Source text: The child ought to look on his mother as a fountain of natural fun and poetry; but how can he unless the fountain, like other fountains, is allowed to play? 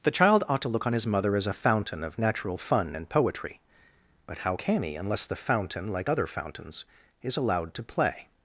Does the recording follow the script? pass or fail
pass